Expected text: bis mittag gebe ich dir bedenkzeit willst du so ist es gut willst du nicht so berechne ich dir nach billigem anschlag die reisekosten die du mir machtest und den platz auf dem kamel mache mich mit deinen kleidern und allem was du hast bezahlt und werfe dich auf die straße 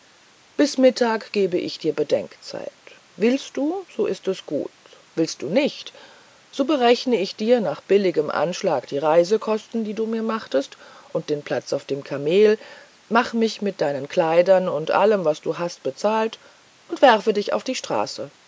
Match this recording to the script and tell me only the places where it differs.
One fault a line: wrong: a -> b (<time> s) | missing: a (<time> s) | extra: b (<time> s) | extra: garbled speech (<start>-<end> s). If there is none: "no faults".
no faults